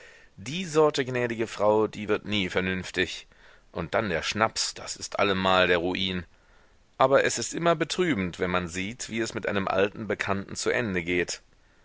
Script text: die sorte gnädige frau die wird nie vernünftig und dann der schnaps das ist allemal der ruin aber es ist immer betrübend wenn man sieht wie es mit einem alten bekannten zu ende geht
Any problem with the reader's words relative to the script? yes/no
no